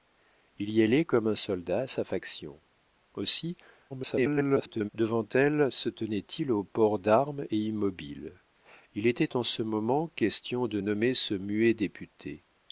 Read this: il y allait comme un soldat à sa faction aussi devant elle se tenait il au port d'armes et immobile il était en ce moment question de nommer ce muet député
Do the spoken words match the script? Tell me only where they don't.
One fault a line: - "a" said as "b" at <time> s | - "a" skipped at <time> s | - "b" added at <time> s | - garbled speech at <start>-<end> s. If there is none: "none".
- garbled speech at 3.9-4.9 s